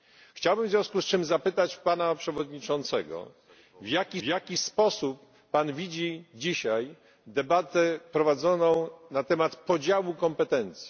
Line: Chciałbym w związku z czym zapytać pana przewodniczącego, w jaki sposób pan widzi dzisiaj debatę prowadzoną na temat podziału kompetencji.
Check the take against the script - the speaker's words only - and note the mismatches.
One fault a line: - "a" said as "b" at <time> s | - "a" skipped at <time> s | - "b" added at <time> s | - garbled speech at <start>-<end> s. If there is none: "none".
- "jaki" added at 4.2 s